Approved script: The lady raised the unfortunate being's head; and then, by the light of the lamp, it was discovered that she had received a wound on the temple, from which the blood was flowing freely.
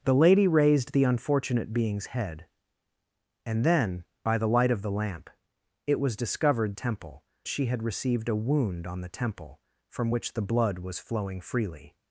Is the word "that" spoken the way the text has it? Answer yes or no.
no